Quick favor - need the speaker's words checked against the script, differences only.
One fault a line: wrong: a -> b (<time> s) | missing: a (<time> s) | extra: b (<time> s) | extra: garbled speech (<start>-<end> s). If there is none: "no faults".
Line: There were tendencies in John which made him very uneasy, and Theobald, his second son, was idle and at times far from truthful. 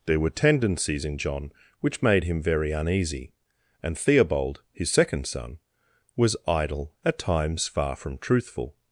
missing: and (6.9 s)